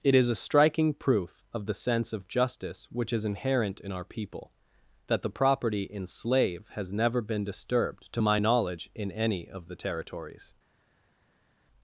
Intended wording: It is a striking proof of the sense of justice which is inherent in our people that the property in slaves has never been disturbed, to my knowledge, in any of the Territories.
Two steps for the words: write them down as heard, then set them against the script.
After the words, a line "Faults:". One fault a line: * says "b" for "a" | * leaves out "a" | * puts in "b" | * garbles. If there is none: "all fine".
It is a striking proof of the sense of justice which is inherent in our people that the property in slave has never been disturbed, to my knowledge, in any of the Territories.
Faults:
* says "slave" for "slaves"